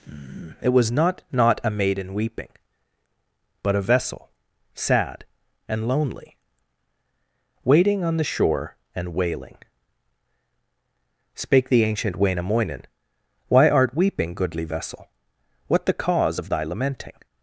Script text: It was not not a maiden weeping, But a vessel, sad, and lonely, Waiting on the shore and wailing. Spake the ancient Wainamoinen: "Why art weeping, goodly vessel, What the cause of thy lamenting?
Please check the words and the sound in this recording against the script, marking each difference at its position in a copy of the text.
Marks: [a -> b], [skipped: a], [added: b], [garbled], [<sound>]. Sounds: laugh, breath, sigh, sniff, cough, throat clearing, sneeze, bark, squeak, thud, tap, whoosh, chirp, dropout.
It was not not a maiden weeping, But a vessel, sad, and lonely, Waiting on the shore and wailing. Spake the ancient Wainamoinen: "Why art weeping, goodly vessel, What the cause of thy lamenting?